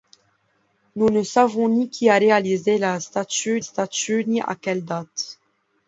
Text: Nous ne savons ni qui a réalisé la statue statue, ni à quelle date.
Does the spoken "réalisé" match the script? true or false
true